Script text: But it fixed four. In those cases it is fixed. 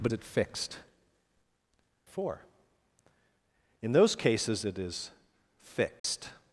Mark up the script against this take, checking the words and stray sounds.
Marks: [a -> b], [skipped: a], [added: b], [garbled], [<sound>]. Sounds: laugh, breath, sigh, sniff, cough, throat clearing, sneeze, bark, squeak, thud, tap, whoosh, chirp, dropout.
But it fixed four. In those cases it is fixed. [dropout]